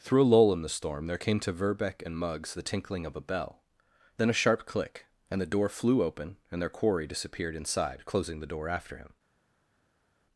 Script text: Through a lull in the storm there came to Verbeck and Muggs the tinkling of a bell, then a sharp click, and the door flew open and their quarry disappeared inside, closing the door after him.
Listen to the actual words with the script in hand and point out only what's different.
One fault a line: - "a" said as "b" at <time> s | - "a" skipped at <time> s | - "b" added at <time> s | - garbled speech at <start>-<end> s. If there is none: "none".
none